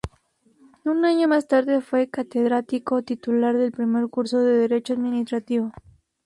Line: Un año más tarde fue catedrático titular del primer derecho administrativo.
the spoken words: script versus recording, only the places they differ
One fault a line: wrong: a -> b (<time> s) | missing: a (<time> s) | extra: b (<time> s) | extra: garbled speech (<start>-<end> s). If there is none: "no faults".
extra: curso de (4.1 s)